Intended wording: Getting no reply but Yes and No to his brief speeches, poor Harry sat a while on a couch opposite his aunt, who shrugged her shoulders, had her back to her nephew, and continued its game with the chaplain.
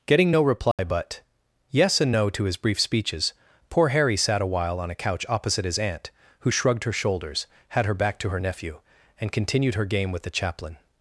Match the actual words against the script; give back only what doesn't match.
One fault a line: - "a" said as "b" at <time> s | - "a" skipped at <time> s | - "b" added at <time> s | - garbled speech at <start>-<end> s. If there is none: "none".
- "its" said as "her" at 9.7 s